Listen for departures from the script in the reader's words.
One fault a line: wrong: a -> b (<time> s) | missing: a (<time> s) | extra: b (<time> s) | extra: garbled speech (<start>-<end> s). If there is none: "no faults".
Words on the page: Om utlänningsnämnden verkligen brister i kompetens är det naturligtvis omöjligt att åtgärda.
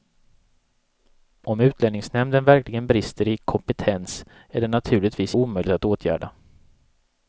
no faults